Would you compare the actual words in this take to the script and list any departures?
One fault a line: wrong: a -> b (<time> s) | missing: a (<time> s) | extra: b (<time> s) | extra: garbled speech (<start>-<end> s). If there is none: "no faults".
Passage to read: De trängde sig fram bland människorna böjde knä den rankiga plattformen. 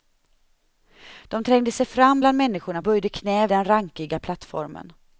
no faults